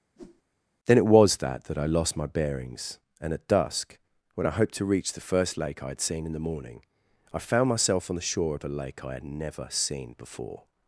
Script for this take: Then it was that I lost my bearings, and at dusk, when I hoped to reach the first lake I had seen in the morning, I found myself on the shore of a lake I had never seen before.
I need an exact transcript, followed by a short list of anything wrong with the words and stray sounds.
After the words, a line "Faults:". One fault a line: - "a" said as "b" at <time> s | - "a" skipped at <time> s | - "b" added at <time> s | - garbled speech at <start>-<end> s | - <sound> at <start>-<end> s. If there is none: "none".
Then it was that that I lost my bearings, and at dusk, when I hoped to reach the first lake I had seen in the morning, I found myself on the shore of a lake I had never seen before.
Faults:
- whoosh at 0.2-0.4 s
- "that" added at 1.6 s